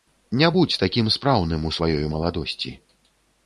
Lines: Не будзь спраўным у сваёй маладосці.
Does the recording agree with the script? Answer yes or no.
no